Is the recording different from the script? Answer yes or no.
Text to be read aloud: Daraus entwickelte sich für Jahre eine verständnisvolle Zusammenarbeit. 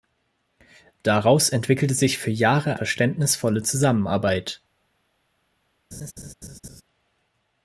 yes